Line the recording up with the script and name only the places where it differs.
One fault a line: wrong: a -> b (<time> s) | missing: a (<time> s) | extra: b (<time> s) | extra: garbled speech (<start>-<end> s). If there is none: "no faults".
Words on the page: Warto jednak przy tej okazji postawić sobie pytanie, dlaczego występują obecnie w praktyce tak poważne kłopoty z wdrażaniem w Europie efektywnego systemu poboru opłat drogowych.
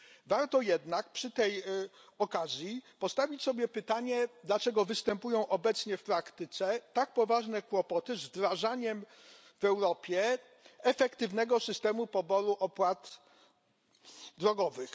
no faults